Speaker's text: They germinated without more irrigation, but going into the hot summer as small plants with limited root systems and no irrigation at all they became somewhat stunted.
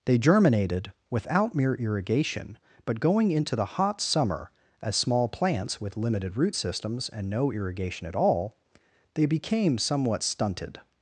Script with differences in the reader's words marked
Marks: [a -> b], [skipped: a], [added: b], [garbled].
They germinated without [more -> mere] irrigation, but going into the hot summer as small plants with limited root systems and no irrigation at all they became somewhat stunted.